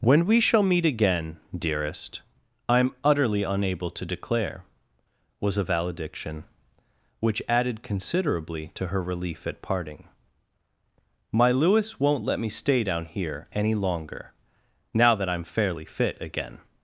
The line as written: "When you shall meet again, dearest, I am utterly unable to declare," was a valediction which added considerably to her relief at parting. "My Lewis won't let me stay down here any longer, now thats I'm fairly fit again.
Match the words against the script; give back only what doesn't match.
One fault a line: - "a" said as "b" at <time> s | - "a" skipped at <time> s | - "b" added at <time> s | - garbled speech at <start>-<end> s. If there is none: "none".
- "you" said as "we" at 0.2 s
- "thats" said as "that" at 15.2 s